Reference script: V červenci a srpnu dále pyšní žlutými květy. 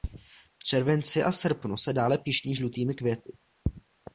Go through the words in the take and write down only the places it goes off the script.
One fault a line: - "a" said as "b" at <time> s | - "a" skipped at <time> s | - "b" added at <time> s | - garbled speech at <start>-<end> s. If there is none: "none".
- "se" added at 1.7 s